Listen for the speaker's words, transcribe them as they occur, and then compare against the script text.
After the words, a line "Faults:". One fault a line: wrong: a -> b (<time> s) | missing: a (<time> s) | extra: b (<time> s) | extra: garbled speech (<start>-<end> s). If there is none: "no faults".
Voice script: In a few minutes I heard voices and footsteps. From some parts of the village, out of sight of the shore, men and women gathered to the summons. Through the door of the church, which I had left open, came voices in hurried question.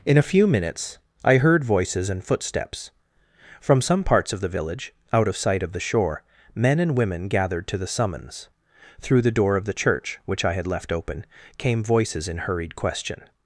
In a few minutes I heard voices and footsteps. From some parts of the village, out of sight of the shore, men and women gathered to the summons. Through the door of the church, which I had left open, came voices in hurried question.
Faults:
no faults